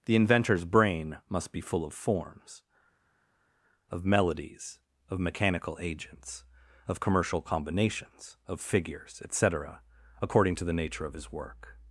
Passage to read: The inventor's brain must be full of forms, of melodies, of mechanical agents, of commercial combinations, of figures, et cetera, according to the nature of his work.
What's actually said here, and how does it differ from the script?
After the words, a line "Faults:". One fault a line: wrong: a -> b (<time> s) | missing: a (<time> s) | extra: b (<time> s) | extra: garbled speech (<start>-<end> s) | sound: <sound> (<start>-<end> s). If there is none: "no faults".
The inventor's brain must be full of forms, of melodies, of mechanical agents, of commercial combinations, of figures, et cetera, according to the nature of his work.
Faults:
no faults